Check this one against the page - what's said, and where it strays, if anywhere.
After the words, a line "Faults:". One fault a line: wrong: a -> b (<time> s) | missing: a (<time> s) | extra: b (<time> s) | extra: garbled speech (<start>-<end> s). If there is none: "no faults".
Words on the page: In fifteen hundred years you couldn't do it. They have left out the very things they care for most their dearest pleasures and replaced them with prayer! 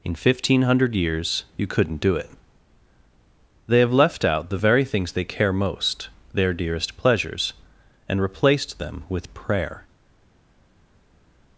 In fifteen hundred years you couldn't do it. They have left out the very things they care most their dearest pleasures and replaced them with prayer!
Faults:
missing: for (5.5 s)